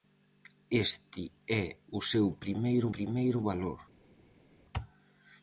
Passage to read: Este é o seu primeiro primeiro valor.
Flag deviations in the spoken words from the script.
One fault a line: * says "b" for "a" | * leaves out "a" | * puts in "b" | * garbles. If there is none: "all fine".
all fine